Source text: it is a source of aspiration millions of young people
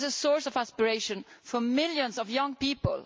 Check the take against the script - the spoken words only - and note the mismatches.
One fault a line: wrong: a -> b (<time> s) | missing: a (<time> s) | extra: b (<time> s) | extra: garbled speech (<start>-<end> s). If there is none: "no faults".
extra: for (1.4 s)